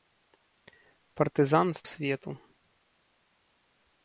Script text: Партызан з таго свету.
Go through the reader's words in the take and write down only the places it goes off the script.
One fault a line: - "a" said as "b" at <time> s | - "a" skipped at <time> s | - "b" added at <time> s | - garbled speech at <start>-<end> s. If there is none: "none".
- "таго" skipped at 1.9 s